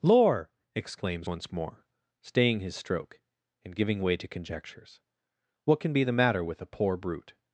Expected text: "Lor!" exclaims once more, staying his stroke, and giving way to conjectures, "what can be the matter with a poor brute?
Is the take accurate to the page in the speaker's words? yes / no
yes